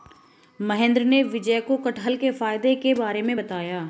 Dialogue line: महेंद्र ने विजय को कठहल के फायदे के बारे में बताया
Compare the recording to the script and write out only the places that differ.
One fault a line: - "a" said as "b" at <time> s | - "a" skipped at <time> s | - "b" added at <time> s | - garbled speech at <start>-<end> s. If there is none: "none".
none